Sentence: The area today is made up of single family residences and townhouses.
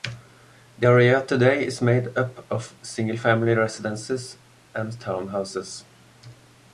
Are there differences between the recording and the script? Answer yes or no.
no